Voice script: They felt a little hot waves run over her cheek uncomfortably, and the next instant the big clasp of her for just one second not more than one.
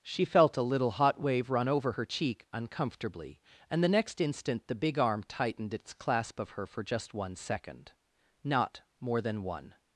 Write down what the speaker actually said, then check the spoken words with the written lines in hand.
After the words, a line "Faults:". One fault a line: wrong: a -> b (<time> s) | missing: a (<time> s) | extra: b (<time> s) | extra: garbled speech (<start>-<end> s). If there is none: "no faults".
She felt a little hot wave run over her cheek uncomfortably, and the next instant the big arm tightened its clasp of her for just one second not more than one.
Faults:
wrong: They -> She (0.0 s)
wrong: waves -> wave (1.2 s)
extra: arm tightened its (5.0 s)